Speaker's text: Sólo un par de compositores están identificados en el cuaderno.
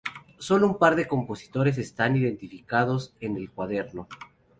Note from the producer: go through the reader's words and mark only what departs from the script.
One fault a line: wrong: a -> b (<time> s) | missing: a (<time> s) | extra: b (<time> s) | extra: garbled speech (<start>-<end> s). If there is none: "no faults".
no faults